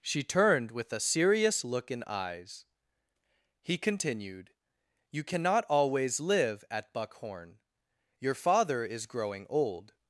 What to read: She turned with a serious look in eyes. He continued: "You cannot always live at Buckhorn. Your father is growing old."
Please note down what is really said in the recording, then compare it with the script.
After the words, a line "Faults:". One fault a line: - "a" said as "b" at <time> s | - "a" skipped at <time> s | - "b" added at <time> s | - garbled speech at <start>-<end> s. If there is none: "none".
She turned with a serious look in eyes. He continued: "You cannot always live at Buckhorn. Your father is growing old."
Faults:
none